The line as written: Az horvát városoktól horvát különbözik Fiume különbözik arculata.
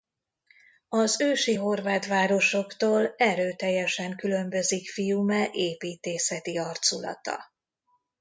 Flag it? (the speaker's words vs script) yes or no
yes